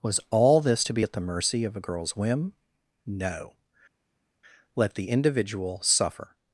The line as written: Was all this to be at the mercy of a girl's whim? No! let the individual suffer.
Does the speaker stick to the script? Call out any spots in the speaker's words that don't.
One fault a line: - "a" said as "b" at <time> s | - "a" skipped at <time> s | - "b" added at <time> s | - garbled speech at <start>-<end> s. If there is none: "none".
none